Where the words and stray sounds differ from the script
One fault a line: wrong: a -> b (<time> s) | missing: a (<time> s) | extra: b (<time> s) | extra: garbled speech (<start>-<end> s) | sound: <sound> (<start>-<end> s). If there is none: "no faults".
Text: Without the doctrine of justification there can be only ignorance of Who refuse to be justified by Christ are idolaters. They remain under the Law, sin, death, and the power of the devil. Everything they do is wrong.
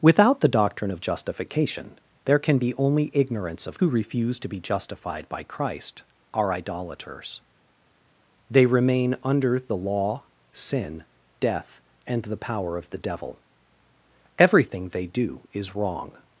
no faults